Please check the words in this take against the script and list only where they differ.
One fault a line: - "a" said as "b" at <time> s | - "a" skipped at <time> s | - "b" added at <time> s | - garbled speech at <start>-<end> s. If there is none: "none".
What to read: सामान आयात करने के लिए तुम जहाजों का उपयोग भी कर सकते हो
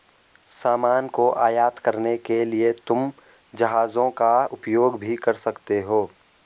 - "को" added at 1.1 s